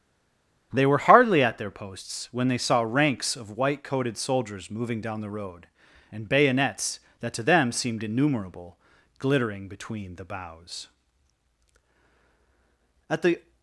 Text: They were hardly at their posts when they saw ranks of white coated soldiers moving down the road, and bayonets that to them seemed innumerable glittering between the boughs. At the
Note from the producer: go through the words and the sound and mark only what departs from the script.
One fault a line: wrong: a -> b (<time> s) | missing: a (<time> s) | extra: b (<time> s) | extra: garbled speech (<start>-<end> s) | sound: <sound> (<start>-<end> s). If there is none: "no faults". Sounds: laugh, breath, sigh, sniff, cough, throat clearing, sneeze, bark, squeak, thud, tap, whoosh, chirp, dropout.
no faults